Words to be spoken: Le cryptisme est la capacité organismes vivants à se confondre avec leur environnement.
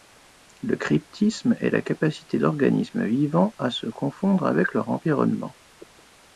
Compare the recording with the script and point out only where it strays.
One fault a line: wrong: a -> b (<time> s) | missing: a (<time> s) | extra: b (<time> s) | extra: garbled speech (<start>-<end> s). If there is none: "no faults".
no faults